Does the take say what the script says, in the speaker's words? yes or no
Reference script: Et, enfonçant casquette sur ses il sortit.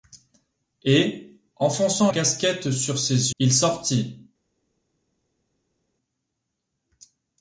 yes